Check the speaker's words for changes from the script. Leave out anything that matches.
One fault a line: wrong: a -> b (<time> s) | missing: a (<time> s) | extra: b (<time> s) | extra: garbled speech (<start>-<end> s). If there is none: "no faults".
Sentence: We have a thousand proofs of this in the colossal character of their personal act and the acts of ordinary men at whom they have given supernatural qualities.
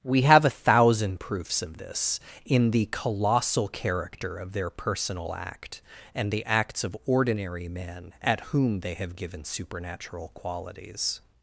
no faults